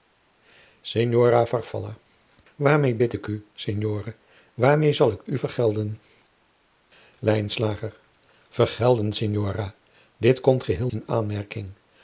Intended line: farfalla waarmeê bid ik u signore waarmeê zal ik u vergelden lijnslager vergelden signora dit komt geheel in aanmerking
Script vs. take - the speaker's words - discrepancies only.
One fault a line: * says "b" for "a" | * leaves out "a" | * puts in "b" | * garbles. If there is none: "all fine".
all fine